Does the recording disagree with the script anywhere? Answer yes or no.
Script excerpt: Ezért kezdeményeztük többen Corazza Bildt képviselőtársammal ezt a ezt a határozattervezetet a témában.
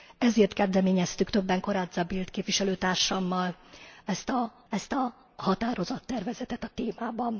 no